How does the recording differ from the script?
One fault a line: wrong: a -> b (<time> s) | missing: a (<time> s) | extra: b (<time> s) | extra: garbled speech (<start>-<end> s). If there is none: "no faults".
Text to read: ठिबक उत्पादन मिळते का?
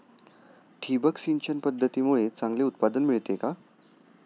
extra: सिंचन पद्धतीमुळे चांगले (1.2 s)